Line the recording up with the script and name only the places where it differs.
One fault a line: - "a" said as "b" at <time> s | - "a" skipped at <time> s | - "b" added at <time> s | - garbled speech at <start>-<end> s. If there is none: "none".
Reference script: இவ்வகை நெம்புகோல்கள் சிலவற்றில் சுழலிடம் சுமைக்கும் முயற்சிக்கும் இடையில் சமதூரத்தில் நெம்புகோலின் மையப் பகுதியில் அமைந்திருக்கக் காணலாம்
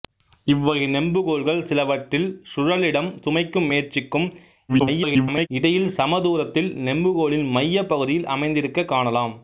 - garbled speech at 4.7-5.5 s